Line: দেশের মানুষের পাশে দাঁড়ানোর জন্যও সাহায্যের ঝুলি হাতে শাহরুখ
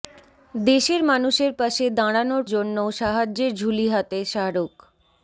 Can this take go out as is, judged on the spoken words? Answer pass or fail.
pass